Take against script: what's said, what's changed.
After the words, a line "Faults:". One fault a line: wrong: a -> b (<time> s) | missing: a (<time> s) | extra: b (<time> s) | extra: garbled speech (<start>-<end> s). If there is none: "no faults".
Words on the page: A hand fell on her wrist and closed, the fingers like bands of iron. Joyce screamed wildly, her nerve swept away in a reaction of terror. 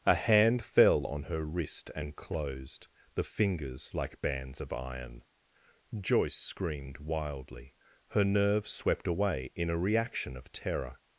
A hand fell on her wrist and closed, the fingers like bands of iron. Joyce screamed wildly, her nerve swept away in a reaction of terror.
Faults:
no faults